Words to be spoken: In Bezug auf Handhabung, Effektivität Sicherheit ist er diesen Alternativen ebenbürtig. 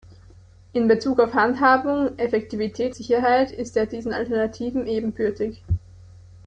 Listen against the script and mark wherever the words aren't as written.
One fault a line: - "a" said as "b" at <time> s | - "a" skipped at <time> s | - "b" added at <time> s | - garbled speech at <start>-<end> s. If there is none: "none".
none